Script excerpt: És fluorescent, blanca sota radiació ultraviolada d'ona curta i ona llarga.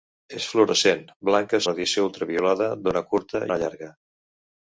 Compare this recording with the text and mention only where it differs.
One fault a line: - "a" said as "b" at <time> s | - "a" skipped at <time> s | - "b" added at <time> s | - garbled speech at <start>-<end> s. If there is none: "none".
- "sota" skipped at 1.6 s
- "i" skipped at 3.5 s